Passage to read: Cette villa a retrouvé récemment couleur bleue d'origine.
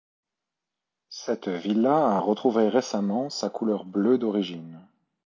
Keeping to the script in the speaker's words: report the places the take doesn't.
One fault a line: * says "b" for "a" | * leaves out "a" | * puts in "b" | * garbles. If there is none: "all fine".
* puts in "sa"